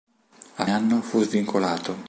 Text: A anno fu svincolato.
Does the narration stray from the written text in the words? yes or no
no